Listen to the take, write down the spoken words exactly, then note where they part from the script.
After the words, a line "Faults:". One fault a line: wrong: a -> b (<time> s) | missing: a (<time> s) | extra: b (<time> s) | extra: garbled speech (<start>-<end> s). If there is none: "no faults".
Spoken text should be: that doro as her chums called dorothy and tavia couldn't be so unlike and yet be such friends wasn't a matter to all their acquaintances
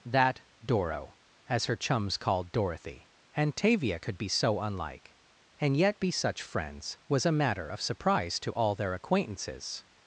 that doro as her chums called dorothy and tavia could be so unlike and yet be such friends was a matter of surprise to all their acquaintances
Faults:
wrong: couldn't -> could (4.0 s)
wrong: wasn't -> was (7.1 s)
extra: of surprise (7.7 s)